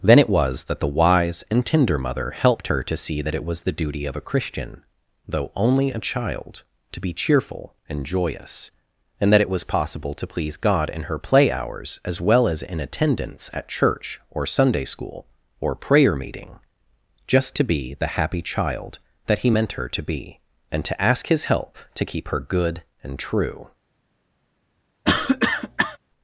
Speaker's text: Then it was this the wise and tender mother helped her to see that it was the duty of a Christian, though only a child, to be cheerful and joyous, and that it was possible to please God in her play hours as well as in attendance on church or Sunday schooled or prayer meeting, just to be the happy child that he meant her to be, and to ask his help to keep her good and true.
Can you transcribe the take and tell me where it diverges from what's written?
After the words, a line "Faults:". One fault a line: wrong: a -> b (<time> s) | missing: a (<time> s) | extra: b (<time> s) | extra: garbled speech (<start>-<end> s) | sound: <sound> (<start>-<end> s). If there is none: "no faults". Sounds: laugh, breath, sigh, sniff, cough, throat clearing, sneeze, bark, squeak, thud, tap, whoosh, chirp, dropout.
Then it was that the wise and tender mother helped her to see that it was the duty of a Christian, though only a child, to be cheerful and joyous, and that it was possible to please God in her play hours as well as in attendance at church or Sunday school or prayer meeting, just to be the happy child that he meant her to be, and to ask his help to keep her good and true.
Faults:
wrong: this -> that (0.7 s)
wrong: on -> at (13.5 s)
wrong: schooled -> school (14.8 s)
sound: cough (25.0-26.0 s)